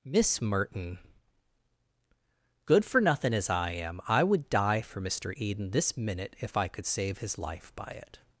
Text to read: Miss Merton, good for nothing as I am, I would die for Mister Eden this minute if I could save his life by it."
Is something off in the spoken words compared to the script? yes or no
no